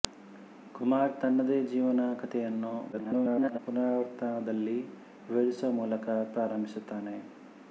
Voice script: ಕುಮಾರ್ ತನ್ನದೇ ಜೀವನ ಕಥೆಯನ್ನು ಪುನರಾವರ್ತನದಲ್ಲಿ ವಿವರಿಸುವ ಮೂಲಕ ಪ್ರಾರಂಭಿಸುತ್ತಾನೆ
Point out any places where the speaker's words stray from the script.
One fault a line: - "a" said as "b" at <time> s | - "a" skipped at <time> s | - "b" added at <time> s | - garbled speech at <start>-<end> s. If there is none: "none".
- garbled speech at 2.9-3.6 s